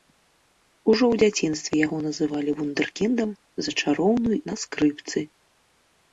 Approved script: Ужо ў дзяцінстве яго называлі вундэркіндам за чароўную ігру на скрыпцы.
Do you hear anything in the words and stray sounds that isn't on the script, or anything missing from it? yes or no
yes